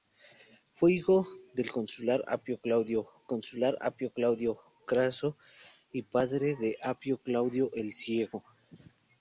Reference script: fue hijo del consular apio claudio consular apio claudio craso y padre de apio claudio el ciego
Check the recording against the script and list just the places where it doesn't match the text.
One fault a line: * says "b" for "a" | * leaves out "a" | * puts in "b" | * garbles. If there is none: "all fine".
all fine